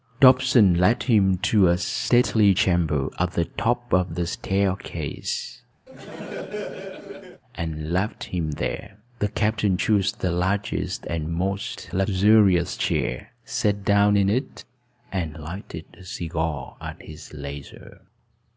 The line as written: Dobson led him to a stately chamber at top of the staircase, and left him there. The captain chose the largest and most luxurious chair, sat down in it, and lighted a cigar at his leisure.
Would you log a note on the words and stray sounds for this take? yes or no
yes